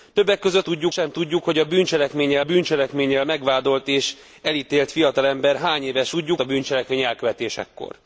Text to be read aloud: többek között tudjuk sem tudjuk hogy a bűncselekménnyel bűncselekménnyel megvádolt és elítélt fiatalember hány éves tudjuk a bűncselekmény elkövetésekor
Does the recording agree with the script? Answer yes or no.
yes